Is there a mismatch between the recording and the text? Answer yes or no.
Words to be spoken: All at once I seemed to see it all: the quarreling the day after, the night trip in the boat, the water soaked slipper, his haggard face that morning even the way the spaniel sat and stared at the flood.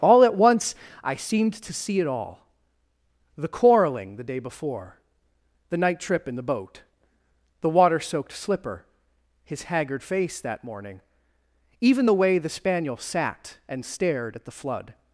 yes